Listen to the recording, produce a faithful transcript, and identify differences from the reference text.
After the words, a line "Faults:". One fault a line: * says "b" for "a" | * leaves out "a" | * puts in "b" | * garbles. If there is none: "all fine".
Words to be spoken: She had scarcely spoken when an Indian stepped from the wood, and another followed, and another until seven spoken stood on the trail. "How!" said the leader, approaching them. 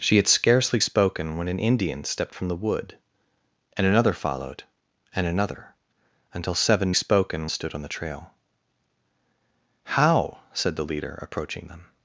She had scarcely spoken when an Indian stepped from the wood, and another followed, and another until seven spoken stood on the trail. "How!" said the leader, approaching them.
Faults:
all fine